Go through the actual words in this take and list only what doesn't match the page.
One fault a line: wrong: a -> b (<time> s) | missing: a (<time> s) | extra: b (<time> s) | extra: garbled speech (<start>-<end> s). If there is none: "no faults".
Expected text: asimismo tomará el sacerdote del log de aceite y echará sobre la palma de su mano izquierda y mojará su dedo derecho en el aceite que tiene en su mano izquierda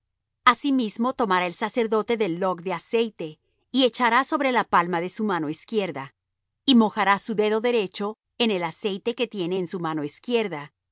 no faults